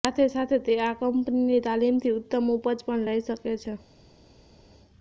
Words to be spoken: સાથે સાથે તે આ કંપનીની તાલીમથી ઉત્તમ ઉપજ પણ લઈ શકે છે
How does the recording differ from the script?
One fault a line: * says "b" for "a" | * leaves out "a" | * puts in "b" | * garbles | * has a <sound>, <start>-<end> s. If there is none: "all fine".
all fine